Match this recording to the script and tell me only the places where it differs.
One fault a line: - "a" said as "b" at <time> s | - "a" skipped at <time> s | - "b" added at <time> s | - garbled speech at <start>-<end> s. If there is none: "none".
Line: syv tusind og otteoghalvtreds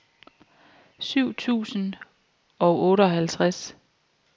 none